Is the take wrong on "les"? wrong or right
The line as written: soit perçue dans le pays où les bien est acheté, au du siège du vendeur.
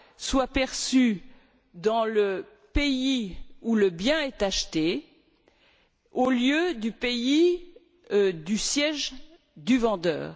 wrong